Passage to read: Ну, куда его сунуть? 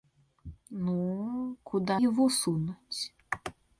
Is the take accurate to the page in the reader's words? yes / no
yes